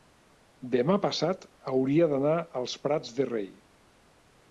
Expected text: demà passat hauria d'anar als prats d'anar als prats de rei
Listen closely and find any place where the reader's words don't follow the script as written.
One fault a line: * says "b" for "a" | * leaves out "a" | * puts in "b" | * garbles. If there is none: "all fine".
* leaves out "d'anar als prats"